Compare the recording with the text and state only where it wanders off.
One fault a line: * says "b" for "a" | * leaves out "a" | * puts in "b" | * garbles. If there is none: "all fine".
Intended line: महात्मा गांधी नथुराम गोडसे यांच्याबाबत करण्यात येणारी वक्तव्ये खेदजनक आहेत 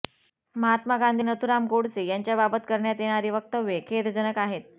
all fine